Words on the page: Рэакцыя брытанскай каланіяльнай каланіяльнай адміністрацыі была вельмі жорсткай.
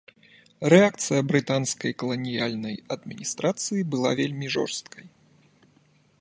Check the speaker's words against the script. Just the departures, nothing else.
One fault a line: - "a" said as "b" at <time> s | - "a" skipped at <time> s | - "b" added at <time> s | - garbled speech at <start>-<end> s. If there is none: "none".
- "каланіяльнай" skipped at 2.8 s